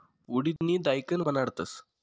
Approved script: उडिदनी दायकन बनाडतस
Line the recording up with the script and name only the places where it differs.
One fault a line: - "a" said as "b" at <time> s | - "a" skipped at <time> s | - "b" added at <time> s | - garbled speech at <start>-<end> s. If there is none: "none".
none